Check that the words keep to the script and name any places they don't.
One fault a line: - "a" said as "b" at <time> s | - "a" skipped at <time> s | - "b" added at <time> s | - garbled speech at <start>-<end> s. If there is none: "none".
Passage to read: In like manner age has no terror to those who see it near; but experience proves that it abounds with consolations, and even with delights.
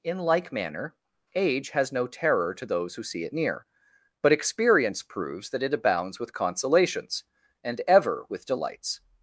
- "even" said as "ever" at 7.8 s